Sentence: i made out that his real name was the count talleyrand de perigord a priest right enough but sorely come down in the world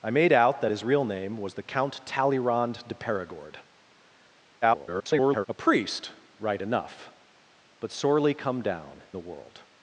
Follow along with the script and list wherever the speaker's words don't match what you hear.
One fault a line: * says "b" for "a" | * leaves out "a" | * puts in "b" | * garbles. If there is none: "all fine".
* garbles
* leaves out "in"